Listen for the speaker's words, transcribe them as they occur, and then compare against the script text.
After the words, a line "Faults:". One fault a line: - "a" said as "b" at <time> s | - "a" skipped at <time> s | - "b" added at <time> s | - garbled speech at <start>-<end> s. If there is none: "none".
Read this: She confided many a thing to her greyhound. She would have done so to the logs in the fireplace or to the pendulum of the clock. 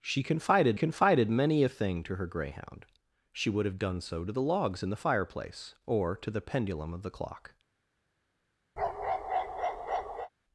She confided confided many a thing to her greyhound. She would have done so to the logs in the fireplace or to the pendulum of the clock.
Faults:
- "confided" added at 0.8 s